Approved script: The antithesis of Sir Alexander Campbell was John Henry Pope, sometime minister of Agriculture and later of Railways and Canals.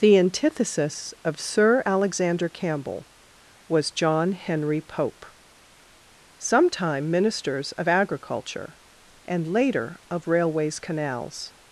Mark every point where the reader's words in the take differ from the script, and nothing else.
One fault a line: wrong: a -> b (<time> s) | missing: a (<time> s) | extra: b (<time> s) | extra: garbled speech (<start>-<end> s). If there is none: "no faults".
wrong: minister -> ministers (7.1 s)
missing: and (10.8 s)